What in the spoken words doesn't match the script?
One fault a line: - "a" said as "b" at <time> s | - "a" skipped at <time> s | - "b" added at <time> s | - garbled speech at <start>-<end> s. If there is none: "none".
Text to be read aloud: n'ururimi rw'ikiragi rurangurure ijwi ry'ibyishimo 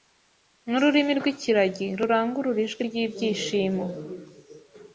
none